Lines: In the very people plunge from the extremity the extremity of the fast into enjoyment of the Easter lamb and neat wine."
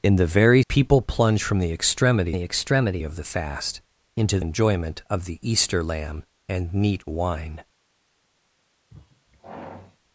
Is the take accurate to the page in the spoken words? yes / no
yes